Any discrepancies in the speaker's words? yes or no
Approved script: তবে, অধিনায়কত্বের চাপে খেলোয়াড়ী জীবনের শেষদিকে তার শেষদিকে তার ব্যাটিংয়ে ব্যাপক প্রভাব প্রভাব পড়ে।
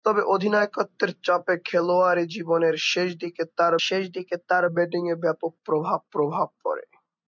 no